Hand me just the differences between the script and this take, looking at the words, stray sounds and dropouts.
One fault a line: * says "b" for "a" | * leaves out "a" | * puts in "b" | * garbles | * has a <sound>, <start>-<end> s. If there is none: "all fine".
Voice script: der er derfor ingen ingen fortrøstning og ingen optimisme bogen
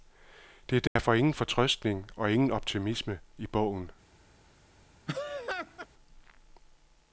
* has a dropout, 0.9-1.0 s
* leaves out "ingen"
* puts in "i"
* has a laugh, 5.1-5.9 s